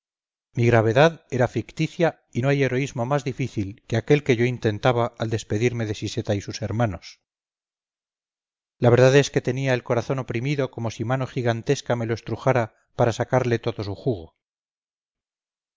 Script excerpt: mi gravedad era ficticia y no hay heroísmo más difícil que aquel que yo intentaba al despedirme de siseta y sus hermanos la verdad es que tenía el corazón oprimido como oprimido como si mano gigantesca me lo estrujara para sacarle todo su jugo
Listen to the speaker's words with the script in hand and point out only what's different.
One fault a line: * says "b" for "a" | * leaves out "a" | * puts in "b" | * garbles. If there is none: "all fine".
* leaves out "oprimido como"